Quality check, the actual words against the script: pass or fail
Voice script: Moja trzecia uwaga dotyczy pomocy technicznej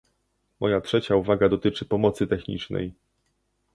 pass